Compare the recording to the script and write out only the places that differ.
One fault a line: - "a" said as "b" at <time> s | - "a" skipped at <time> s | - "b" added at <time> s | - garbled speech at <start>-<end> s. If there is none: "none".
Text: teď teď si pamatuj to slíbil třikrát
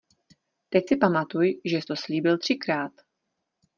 - "teď" skipped at 0.8 s
- "žes" added at 1.6 s